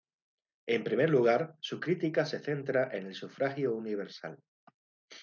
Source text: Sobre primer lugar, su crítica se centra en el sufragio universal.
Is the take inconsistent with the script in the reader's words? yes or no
yes